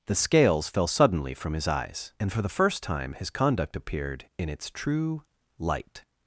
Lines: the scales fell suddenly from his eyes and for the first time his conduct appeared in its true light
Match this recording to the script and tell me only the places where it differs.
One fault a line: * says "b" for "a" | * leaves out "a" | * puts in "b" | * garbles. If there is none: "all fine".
all fine